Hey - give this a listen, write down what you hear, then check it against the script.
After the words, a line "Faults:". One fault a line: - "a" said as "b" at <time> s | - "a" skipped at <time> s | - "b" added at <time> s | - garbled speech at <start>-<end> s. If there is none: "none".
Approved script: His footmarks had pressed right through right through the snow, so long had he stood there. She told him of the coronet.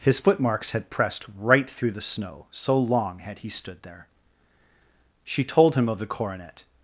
His footmarks had pressed right through the snow, so long had he stood there. She told him of the coronet.
Faults:
- "right through" skipped at 1.9 s